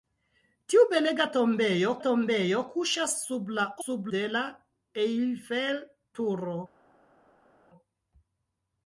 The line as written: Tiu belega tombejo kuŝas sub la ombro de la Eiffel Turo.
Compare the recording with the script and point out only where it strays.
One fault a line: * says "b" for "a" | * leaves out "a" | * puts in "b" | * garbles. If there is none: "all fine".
* puts in "tombejo"
* says "sub" for "ombro"